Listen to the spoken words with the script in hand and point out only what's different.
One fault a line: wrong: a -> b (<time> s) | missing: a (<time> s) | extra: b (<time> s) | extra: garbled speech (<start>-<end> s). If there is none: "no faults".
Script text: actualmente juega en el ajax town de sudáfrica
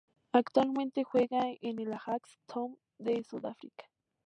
no faults